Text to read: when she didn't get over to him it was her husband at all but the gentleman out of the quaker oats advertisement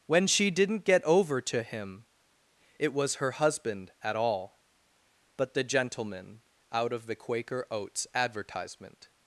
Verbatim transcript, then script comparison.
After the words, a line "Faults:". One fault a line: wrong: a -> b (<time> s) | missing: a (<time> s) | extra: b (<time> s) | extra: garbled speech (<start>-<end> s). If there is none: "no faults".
when she didn't get over to him it was her husband at all but the gentleman out of the quaker oats advertisement
Faults:
no faults